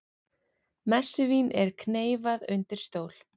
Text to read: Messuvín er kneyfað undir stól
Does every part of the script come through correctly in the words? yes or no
yes